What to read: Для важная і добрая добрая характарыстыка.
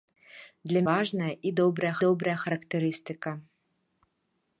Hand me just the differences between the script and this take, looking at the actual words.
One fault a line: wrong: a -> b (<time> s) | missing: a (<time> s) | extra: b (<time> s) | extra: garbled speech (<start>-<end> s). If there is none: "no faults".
no faults